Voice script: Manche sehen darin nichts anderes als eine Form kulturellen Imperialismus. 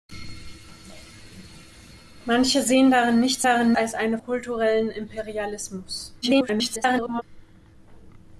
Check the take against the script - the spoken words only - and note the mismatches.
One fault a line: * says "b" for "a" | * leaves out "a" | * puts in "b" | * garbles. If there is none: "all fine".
* says "darin" for "anderes"
* leaves out "Form"
* garbles